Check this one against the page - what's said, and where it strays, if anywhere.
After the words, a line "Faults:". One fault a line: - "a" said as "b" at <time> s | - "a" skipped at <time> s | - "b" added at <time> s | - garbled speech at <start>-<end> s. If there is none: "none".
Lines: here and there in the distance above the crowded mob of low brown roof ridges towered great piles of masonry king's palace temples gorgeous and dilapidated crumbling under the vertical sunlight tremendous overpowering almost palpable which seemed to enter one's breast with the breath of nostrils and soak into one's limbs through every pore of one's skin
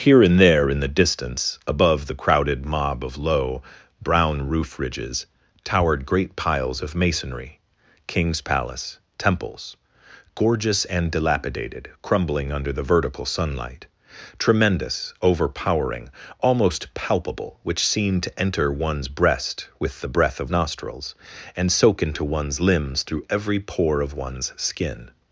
here and there in the distance above the crowded mob of low brown roof ridges towered great piles of masonry king's palace temples gorgeous and dilapidated crumbling under the vertical sunlight tremendous overpowering almost palpable which seemed to enter one's breast with the breath of nostrils and soak into one's limbs through every pore of one's skin
Faults:
none